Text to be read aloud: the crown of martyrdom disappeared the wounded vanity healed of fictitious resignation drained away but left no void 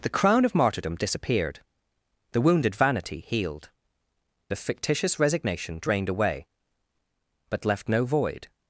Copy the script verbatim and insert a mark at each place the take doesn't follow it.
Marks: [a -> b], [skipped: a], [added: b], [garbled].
the crown of martyrdom disappeared the wounded vanity healed of fictitious resignation drained away but left no void